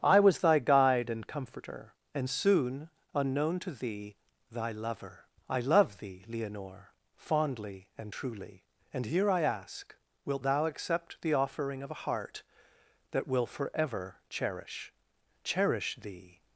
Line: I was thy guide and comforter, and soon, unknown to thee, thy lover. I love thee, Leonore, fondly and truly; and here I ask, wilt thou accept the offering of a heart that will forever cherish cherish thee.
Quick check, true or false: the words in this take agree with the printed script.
true